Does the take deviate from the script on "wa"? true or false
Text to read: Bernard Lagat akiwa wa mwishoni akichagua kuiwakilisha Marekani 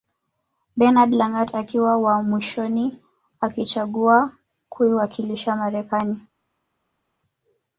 false